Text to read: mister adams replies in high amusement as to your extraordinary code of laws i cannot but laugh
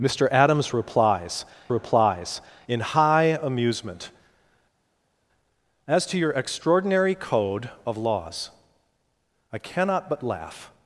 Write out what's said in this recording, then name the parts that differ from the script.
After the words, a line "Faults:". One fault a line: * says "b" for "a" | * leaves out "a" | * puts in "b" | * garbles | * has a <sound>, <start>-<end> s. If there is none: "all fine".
mister adams replies replies in high amusement as to your extraordinary code of laws i cannot but laugh
Faults:
* puts in "replies"